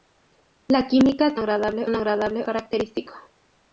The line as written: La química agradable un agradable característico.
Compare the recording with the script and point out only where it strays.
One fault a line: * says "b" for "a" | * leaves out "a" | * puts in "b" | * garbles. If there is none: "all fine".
all fine